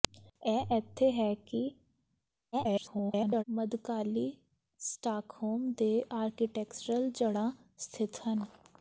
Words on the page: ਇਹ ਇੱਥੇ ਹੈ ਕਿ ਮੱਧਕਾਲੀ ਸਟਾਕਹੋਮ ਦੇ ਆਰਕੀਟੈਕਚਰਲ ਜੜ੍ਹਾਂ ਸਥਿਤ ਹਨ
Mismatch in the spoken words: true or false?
true